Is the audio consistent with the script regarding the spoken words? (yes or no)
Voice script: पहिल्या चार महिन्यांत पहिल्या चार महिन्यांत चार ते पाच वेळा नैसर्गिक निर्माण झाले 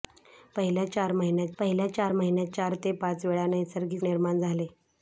yes